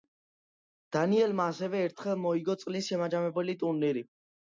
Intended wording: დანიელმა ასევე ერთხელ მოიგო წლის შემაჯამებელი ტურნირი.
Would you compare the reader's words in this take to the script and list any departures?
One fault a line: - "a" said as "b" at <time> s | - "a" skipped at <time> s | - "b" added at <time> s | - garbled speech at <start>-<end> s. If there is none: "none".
none